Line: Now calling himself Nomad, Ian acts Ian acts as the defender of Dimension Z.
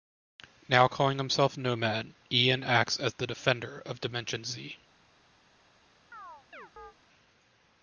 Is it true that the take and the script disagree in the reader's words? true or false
true